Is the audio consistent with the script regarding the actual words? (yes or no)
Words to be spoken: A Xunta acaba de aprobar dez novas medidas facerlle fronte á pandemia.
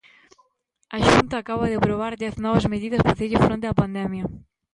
yes